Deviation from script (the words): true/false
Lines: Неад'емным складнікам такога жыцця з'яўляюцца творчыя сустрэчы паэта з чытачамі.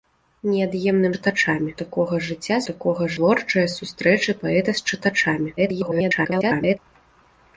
true